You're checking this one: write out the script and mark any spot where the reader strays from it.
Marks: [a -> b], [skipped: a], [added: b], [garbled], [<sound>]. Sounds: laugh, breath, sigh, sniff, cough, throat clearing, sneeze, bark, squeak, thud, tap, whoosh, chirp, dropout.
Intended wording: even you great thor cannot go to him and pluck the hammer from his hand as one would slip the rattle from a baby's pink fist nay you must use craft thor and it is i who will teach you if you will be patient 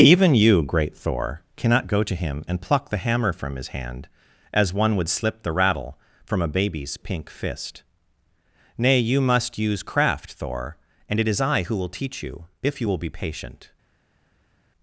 even you great thor cannot go to him and pluck the hammer from his hand as one would slip the rattle from a baby's pink fist nay you must use craft thor and it is i who will teach you if you will be patient